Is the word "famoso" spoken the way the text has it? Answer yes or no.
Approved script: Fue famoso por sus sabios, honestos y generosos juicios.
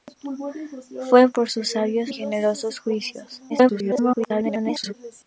no